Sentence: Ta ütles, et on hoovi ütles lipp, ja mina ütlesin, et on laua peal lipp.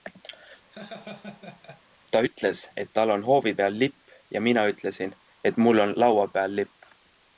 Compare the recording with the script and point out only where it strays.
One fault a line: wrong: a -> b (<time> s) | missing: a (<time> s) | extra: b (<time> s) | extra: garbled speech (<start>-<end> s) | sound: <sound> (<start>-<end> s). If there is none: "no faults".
sound: laugh (0.7-1.8 s)
extra: tal (3.0 s)
wrong: ütles -> peal (3.6 s)
extra: mul (5.7 s)